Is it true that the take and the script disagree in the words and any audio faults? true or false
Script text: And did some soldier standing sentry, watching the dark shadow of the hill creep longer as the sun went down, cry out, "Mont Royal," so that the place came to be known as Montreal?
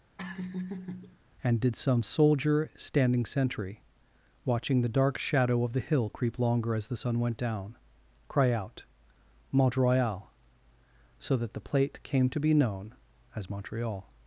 true